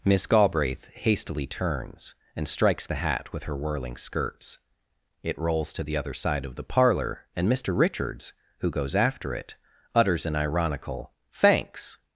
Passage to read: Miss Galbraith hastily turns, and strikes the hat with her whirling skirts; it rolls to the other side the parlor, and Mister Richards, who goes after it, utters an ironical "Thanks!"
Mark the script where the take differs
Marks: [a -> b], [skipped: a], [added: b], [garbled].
Miss Galbraith hastily turns, and strikes the hat with her whirling skirts; it rolls to the other side [added: of] the parlor, and Mister Richards, who goes after it, utters an ironical "Thanks!"